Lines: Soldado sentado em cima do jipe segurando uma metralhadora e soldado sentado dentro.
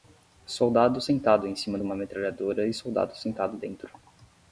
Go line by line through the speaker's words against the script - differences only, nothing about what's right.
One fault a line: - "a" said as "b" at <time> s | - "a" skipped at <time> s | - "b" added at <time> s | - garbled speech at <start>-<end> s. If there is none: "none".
- "do jipe segurando" skipped at 1.8 s